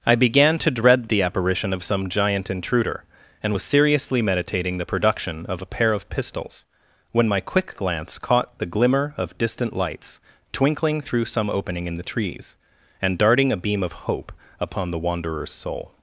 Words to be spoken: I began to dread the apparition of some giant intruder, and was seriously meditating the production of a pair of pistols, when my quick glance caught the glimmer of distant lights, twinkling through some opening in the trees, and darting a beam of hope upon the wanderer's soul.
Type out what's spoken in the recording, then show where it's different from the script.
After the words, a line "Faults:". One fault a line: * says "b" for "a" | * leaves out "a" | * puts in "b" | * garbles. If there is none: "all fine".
I began to dread the apparition of some giant intruder, and was seriously meditating the production of a pair of pistols, when my quick glance caught the glimmer of distant lights, twinkling through some opening in the trees, and darting a beam of hope upon the wanderer's soul.
Faults:
all fine